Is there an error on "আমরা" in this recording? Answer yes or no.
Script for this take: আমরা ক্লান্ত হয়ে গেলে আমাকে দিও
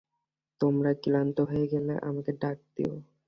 yes